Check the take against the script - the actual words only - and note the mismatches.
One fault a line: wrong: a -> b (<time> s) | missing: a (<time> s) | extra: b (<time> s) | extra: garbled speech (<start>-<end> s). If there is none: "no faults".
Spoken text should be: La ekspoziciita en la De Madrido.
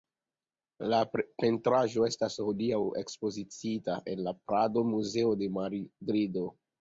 extra: pentraĵo estas hodiaŭ (1.4 s)
extra: Prado Muzeo (4.5 s)